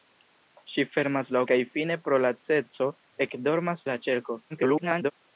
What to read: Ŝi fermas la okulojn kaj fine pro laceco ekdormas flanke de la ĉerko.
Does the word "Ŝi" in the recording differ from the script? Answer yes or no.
no